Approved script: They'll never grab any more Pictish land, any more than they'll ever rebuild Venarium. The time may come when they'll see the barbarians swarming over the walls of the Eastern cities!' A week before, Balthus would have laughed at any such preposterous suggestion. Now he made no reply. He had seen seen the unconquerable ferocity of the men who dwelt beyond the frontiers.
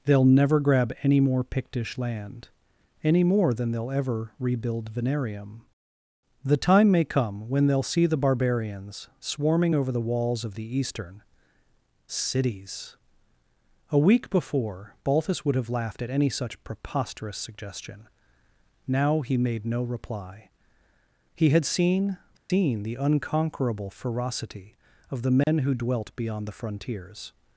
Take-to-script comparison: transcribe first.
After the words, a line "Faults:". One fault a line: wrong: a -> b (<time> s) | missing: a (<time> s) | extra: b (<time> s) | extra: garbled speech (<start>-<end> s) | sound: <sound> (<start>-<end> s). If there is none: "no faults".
They'll never grab any more Pictish land, any more than they'll ever rebuild Venarium. The time may come when they'll see the barbarians swarming over the walls of the Eastern cities!' A week before, Balthus would have laughed at any such preposterous suggestion. Now he made no reply. He had seen seen the unconquerable ferocity of the men who dwelt beyond the frontiers.
Faults:
sound: dropout (22.4-22.5 s)
sound: dropout (25.4-25.5 s)